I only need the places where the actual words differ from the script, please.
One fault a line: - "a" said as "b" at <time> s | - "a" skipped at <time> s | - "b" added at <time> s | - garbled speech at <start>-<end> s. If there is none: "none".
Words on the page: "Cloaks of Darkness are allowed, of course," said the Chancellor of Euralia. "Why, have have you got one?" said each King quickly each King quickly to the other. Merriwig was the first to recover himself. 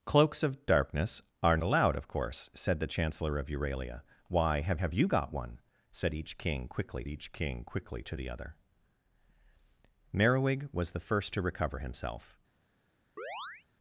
none